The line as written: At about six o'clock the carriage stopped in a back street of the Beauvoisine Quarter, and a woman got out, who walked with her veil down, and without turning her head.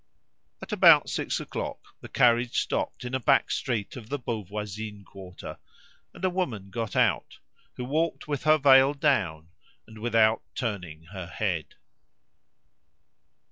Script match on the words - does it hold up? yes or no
yes